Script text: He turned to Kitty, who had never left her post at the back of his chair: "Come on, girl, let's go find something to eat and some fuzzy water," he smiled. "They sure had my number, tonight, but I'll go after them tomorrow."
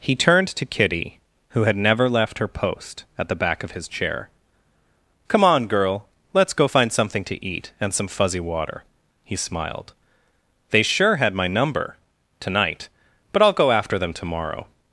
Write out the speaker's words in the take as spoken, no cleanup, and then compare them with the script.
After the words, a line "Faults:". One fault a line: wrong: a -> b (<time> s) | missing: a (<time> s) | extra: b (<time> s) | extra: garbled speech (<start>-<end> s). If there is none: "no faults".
He turned to Kitty, who had never left her post at the back of his chair: "Come on, girl, let's go find something to eat and some fuzzy water," he smiled. "They sure had my number, tonight, but I'll go after them tomorrow."
Faults:
no faults